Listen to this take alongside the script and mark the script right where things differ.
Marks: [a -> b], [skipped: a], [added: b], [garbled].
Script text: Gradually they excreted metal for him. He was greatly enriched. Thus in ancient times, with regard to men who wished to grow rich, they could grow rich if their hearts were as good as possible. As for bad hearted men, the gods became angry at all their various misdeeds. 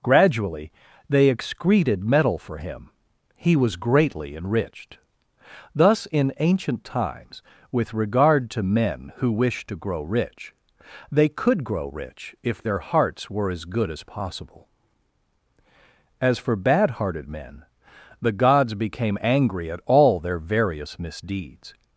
Gradually they excreted metal for him. He was greatly enriched. Thus in ancient times, with regard to men who wished to grow rich, they could grow rich if their hearts were as good as possible. As for bad hearted men, the gods became angry at all their various misdeeds.